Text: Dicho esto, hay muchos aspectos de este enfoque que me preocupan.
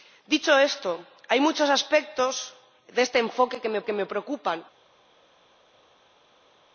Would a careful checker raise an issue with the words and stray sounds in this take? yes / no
yes